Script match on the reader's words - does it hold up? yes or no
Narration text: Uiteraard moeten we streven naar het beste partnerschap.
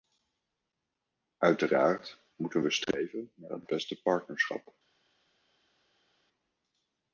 yes